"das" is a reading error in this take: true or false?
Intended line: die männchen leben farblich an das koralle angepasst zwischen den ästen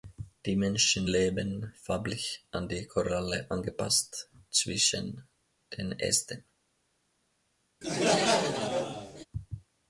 true